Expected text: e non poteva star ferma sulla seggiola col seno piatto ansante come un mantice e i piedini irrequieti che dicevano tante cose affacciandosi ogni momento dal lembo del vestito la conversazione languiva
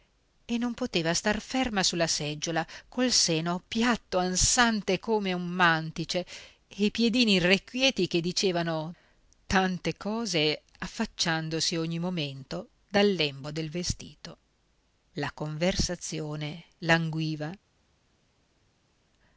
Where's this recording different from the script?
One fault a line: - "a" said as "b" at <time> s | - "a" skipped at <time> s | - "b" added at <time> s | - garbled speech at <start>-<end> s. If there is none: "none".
none